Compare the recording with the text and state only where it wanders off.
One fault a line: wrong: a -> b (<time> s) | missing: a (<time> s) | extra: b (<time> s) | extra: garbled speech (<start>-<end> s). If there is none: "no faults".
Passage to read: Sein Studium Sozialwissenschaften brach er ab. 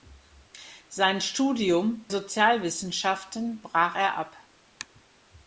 no faults